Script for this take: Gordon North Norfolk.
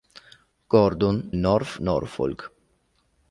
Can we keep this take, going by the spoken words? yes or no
yes